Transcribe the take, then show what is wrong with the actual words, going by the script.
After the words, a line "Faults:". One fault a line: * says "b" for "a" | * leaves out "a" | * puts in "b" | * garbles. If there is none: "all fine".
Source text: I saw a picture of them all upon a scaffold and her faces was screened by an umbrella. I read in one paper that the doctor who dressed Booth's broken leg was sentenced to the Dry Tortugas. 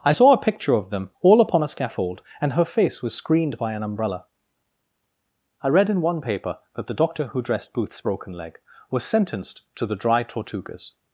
I saw a picture of them all upon a scaffold and her face was screened by an umbrella. I read in one paper that the doctor who dressed Booth's broken leg was sentenced to the Dry Tortugas.
Faults:
* says "face" for "faces"